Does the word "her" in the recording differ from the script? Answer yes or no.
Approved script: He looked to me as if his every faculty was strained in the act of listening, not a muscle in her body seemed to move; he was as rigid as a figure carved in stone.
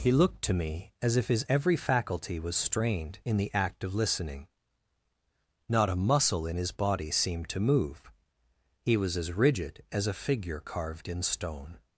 yes